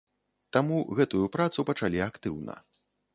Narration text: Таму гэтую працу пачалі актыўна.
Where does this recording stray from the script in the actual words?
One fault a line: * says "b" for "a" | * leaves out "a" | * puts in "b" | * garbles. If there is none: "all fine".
all fine